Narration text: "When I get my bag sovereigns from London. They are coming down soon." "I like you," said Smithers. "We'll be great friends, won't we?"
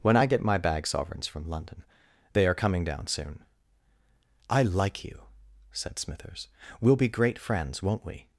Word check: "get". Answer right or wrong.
right